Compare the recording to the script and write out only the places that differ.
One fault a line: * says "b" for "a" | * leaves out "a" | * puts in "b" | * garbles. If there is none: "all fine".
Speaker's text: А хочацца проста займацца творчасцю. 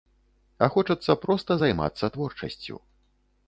all fine